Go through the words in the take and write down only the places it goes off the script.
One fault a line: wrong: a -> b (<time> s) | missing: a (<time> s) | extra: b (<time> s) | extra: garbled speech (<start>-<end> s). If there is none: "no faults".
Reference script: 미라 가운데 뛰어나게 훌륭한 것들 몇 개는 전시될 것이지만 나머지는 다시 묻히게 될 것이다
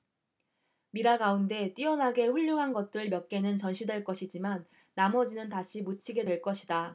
no faults